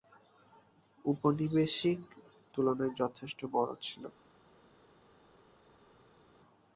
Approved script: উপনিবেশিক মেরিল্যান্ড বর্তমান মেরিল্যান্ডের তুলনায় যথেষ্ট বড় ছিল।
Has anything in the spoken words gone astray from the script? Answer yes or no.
yes